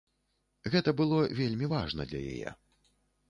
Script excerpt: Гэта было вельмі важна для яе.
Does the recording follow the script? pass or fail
pass